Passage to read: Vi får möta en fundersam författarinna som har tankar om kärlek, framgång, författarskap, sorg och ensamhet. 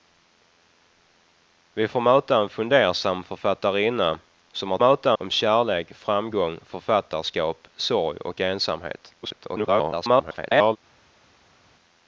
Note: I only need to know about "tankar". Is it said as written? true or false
false